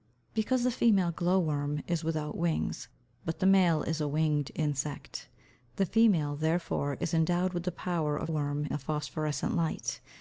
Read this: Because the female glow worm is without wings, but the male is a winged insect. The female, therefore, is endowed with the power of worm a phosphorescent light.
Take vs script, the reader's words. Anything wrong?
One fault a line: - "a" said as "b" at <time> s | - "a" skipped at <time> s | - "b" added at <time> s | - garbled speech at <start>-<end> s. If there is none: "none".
none